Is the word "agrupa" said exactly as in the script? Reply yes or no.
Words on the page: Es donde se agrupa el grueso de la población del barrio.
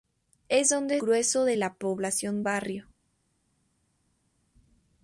no